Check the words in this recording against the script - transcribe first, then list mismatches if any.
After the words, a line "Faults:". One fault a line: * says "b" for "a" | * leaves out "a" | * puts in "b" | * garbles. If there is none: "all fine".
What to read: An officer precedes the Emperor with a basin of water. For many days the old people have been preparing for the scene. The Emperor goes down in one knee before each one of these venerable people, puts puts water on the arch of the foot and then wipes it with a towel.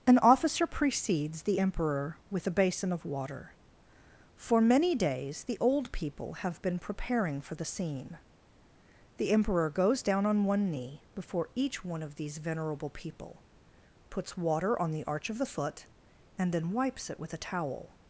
An officer precedes the Emperor with a basin of water. For many days the old people have been preparing for the scene. The Emperor goes down on one knee before each one of these venerable people, puts water on the arch of the foot and then wipes it with a towel.
Faults:
* says "on" for "in"
* leaves out "puts"